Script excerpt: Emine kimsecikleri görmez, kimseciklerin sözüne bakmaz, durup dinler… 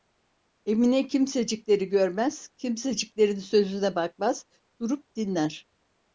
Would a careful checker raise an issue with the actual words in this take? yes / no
no